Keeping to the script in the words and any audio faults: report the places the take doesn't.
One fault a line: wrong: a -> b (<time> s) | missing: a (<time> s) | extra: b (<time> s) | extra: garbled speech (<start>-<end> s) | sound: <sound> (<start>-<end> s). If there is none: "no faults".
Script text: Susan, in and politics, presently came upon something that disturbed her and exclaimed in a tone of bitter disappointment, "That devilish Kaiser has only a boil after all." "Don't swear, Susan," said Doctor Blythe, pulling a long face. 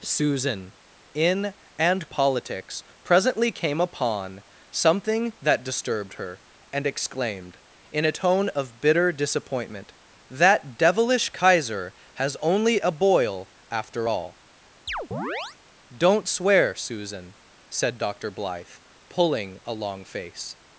sound: chirp (14.9-15.6 s)